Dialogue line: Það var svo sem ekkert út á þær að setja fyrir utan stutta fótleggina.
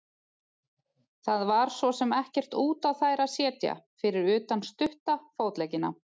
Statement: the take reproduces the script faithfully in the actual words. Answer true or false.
true